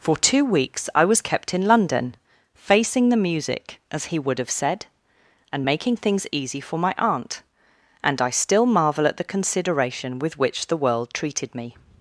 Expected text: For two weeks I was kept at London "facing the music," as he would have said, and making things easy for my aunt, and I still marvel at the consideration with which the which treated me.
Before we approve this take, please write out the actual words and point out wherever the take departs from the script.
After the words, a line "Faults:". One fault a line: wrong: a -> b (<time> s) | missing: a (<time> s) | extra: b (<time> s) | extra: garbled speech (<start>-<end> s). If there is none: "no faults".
For two weeks I was kept in London "facing the music," as he would have said, and making things easy for my aunt, and I still marvel at the consideration with which the world treated me.
Faults:
wrong: at -> in (1.5 s)
wrong: which -> world (10.8 s)